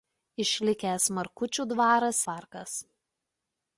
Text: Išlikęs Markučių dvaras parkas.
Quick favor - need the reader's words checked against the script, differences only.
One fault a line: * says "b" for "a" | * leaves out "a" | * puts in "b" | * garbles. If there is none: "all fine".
all fine